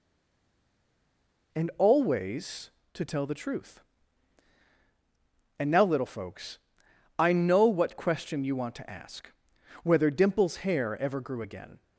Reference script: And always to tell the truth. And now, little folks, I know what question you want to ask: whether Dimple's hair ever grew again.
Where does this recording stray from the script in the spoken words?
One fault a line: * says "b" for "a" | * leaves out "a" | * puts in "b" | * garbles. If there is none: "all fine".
all fine